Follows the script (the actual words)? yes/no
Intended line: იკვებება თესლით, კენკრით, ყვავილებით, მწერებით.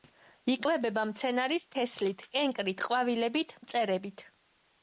no